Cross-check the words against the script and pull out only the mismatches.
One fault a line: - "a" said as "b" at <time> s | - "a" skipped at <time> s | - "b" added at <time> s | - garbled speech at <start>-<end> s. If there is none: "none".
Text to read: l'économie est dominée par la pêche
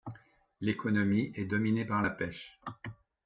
none